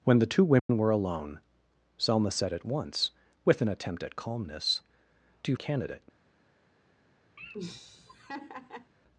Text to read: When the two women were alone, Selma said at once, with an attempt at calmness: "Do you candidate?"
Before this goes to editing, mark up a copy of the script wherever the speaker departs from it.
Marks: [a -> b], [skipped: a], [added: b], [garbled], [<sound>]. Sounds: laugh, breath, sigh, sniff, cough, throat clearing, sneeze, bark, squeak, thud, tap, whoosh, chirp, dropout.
When the two women [dropout] were alone, Selma said at once, with an attempt at calmness: "Do you candidate?" [laugh]